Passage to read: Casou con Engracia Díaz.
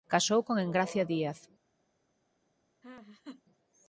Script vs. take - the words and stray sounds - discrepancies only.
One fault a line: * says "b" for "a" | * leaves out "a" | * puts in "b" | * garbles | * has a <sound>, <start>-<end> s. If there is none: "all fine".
* has a laugh, 2.8-3.4 s